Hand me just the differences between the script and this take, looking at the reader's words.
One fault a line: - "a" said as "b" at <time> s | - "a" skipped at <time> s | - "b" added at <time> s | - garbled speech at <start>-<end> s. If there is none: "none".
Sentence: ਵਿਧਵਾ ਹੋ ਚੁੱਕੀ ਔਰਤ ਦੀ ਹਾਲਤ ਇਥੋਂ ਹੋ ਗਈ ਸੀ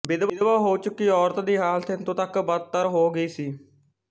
- "ਤੱਕ ਬਦਤਰ" added at 2.1 s